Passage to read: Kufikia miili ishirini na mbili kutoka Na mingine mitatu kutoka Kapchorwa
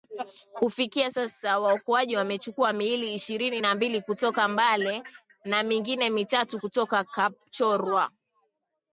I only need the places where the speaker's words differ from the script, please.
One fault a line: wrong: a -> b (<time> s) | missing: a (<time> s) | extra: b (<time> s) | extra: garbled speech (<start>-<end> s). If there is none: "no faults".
extra: sasa waokoaji wamechukua (1.1 s)
extra: Mbale (4.5 s)